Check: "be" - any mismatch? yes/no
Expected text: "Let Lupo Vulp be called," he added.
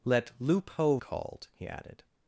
yes